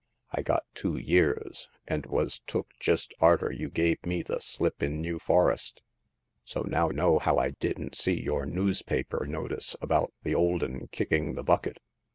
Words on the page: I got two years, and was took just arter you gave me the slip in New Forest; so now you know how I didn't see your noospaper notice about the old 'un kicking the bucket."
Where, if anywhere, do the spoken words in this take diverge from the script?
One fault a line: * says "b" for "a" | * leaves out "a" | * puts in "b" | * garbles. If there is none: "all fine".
* leaves out "you"